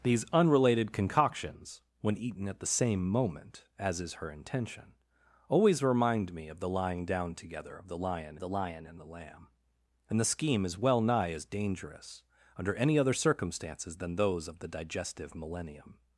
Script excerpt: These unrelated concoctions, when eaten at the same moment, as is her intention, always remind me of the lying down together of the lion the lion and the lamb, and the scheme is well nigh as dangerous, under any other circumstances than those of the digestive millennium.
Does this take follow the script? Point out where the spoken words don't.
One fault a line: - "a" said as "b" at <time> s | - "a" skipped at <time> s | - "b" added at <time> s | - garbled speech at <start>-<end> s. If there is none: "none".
none